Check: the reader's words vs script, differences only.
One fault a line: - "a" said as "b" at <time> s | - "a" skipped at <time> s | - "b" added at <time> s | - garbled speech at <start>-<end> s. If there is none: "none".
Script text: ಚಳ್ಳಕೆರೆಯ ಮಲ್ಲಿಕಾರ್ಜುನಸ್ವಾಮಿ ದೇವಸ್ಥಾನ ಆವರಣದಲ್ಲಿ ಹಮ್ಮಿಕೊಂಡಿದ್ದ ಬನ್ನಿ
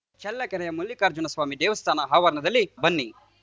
- "ಹಮ್ಮಿಕೊಂಡಿದ್ದ" skipped at 2.6 s